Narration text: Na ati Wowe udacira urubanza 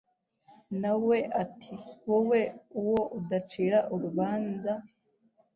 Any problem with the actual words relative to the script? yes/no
yes